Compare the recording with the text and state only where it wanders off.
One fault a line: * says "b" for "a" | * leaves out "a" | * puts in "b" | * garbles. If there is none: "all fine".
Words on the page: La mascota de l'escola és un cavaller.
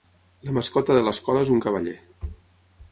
all fine